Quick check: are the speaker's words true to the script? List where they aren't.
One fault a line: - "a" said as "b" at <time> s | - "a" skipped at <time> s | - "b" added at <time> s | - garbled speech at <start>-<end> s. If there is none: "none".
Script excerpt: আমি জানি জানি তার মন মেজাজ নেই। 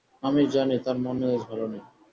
- "জানি" skipped at 0.8 s
- "ভালো" added at 1.5 s